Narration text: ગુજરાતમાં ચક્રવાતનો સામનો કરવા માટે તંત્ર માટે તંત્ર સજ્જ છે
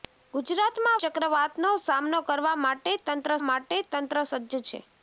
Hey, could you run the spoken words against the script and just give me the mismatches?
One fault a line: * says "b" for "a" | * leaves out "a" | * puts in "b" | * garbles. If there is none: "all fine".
all fine